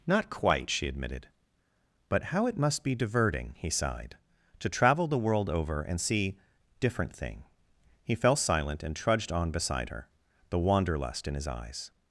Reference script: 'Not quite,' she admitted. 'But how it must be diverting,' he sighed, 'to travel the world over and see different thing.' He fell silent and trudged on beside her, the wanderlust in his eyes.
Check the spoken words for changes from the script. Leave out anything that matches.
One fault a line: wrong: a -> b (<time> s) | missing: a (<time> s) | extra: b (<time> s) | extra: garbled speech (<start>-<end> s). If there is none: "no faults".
no faults